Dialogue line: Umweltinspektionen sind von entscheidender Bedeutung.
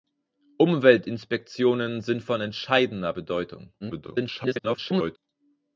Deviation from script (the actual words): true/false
true